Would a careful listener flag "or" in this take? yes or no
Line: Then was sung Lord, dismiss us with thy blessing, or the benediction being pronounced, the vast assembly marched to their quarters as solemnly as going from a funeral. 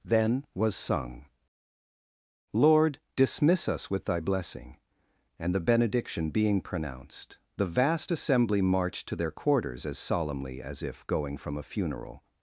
yes